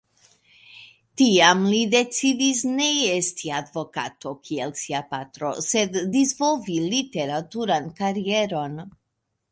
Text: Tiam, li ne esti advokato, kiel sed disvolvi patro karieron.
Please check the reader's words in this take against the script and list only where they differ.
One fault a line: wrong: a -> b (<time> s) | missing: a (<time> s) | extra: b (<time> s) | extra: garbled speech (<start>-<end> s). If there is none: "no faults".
extra: decidis (1.9 s)
extra: sia patro (4.8 s)
wrong: patro -> literaturan (7.0 s)